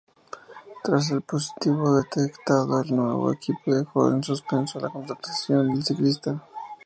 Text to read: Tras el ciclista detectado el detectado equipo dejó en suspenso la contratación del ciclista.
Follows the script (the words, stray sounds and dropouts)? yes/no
no